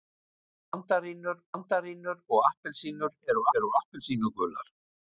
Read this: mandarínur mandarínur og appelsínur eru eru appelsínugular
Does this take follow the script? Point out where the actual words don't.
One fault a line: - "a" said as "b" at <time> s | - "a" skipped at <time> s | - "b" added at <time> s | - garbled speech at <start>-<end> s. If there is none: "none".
none